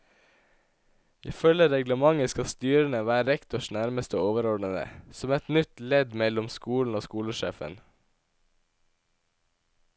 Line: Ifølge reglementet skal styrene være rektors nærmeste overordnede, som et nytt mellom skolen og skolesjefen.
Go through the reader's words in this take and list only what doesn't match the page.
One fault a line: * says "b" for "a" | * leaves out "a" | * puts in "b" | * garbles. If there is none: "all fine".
* puts in "ledd"